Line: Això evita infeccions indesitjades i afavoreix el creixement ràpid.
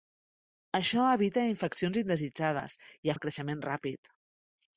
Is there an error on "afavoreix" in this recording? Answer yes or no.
yes